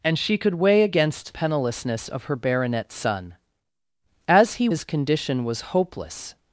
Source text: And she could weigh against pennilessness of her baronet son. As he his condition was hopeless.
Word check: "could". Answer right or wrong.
right